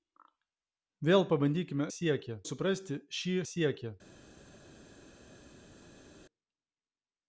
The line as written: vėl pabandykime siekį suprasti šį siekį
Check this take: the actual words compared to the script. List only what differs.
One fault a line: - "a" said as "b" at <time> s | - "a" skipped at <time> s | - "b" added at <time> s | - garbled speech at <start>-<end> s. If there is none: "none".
none